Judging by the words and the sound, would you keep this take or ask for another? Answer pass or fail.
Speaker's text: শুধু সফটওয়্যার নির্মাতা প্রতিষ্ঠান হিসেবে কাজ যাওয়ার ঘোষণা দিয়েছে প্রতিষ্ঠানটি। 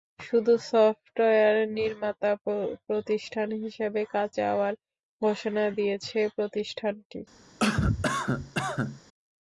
fail